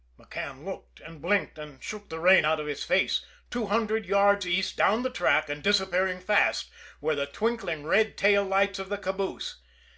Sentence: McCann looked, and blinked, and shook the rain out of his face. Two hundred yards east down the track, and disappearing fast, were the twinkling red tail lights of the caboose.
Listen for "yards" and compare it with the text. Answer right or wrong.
right